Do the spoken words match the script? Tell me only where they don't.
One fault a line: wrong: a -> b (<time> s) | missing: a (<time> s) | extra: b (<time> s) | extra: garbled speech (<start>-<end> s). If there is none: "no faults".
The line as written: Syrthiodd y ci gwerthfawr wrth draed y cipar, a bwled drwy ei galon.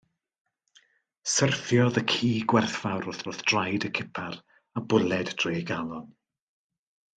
extra: wrth (3.3 s)